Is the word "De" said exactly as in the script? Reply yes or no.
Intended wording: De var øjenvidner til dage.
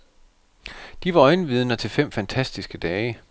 yes